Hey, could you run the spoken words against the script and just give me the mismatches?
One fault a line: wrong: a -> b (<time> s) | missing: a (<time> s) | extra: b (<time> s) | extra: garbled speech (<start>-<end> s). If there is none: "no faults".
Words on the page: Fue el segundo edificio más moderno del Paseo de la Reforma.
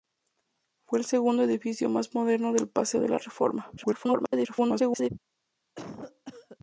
extra: garbled speech (3.8-5.1 s)